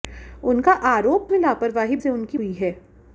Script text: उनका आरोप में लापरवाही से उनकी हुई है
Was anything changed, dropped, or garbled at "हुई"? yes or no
no